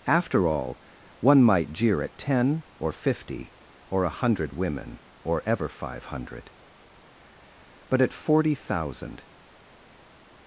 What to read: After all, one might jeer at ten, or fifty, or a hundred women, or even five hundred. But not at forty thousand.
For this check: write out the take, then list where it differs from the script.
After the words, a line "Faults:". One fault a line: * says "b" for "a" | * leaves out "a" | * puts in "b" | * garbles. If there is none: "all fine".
After all, one might jeer at ten, or fifty, or a hundred women, or ever five hundred. But at forty thousand.
Faults:
* says "ever" for "even"
* leaves out "not"